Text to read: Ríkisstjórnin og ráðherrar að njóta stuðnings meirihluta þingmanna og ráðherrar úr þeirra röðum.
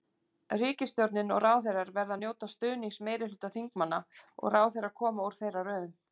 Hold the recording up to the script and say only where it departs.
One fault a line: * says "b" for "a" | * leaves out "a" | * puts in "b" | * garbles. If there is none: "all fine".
* puts in "verða"
* puts in "koma"